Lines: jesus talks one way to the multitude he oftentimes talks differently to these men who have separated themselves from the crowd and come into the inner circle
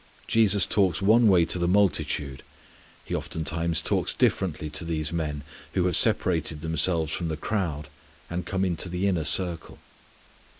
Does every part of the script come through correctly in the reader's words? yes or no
yes